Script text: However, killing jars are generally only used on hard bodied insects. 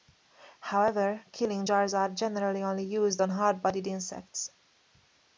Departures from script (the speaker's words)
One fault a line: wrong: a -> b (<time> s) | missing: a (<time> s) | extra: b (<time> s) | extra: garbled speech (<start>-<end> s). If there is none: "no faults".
no faults